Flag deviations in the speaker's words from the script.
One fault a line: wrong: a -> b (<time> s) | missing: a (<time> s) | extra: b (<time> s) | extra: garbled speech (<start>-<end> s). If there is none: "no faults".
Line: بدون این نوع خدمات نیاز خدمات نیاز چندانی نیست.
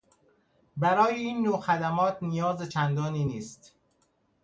wrong: بدون -> برای (0.8 s)
missing: خدمات نیاز (2.7 s)